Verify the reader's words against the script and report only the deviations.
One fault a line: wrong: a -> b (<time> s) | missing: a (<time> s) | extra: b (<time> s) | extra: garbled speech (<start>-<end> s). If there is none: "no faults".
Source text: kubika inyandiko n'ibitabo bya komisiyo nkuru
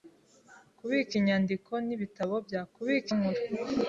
wrong: komisiyo -> kubika (2.7 s)